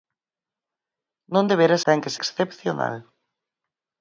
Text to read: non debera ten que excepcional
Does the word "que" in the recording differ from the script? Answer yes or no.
no